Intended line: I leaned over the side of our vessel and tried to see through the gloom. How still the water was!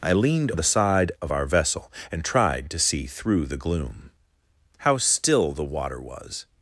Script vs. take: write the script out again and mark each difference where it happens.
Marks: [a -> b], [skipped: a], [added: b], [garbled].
I leaned [skipped: over] the side of our vessel and tried to see through the gloom. How still the water was!